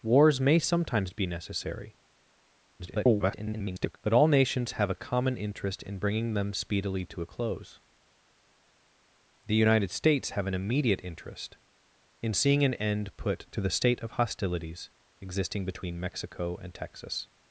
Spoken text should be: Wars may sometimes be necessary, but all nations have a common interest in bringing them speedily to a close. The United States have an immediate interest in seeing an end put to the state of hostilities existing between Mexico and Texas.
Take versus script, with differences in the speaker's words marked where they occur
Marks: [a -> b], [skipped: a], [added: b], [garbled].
Wars may sometimes be necessary, [garbled] but all nations have a common interest in bringing them speedily to a close. The United States have an immediate interest in seeing an end put to the state of hostilities existing between Mexico and Texas.